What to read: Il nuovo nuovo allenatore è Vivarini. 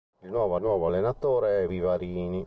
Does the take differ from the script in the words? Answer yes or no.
no